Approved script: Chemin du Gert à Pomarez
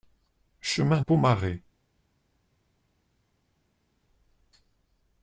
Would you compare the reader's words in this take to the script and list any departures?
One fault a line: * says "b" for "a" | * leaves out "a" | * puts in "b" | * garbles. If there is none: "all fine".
* leaves out "du Gert à"